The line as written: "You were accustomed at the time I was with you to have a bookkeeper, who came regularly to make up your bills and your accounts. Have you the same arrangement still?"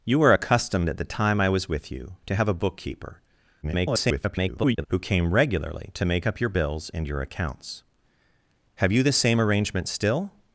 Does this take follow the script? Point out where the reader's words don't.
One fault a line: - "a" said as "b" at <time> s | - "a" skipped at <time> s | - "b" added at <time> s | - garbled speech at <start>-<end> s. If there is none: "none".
- garbled speech at 3.6-4.9 s